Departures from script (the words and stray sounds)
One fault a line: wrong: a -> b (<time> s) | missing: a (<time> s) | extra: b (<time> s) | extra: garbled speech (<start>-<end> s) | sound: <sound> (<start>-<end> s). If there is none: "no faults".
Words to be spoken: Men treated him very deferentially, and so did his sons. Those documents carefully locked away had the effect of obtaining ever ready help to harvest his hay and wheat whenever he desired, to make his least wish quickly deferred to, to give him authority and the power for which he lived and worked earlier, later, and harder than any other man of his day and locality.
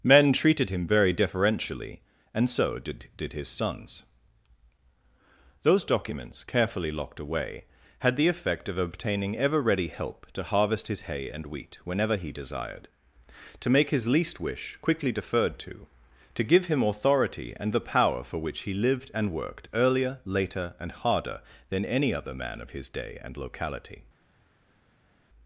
extra: did (3.2 s)